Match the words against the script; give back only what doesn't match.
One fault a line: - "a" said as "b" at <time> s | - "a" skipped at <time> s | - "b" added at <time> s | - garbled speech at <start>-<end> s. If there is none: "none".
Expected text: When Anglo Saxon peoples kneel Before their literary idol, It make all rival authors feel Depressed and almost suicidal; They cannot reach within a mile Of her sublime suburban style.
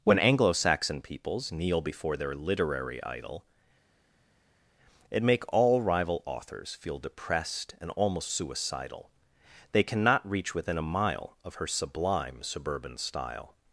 none